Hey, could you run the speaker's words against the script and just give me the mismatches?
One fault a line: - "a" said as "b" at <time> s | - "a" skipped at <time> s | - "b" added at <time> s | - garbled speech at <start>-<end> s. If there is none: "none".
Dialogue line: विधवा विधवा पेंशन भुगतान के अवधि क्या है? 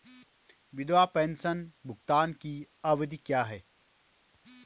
- "विधवा" skipped at 1.1 s
- "के" said as "की" at 2.3 s